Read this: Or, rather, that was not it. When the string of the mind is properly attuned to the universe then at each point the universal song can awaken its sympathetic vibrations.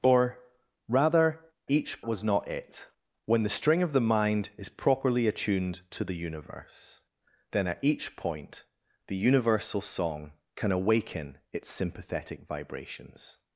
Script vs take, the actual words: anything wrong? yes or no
yes